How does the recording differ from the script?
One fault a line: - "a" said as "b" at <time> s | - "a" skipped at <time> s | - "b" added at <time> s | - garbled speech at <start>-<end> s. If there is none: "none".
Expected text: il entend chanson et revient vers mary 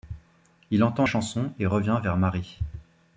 none